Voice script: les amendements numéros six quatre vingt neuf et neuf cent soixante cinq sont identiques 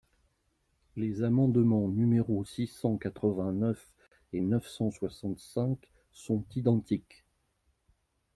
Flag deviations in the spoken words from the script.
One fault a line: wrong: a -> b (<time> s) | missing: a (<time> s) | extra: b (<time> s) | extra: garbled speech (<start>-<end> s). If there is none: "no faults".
extra: cent (2.7 s)